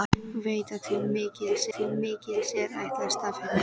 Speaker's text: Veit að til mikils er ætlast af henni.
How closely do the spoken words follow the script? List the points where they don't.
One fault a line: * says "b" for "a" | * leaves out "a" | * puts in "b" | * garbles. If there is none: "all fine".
* puts in "til mikils"